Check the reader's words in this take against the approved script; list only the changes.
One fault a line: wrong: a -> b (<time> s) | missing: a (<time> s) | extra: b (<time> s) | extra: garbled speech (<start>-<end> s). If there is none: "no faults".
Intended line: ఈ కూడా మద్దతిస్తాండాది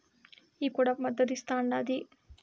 no faults